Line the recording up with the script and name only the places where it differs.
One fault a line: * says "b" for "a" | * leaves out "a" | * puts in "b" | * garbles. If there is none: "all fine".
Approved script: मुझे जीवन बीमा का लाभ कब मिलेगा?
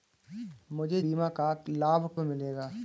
* leaves out "जीवन"
* leaves out "कब"